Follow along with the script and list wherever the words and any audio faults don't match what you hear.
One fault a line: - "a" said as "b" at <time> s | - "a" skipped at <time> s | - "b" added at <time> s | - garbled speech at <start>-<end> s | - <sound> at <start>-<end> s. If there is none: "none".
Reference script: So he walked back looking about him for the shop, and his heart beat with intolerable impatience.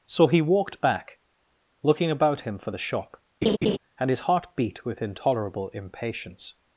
- laugh at 3.4-3.8 s